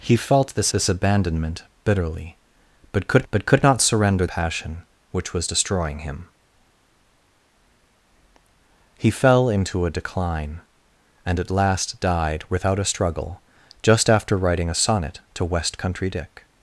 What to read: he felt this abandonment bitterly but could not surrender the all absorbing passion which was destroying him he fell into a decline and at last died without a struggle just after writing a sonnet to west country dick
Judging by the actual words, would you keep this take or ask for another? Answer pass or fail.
fail